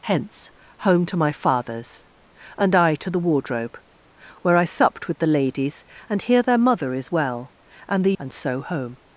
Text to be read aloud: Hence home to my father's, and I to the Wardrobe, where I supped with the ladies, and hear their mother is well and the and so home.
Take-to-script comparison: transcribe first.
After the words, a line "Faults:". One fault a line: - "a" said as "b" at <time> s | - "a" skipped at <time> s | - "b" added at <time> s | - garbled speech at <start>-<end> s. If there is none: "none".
Hence home to my father's, and I to the Wardrobe, where I supped with the ladies, and hear their mother is well and the and so home.
Faults:
none